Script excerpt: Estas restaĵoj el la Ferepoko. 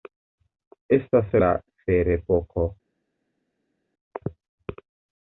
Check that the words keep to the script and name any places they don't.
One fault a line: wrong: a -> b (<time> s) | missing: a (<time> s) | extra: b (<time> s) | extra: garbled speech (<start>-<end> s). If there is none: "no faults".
missing: restaĵoj el (1.4 s)